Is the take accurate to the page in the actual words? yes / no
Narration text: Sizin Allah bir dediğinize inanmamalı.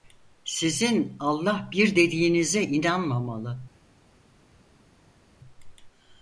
yes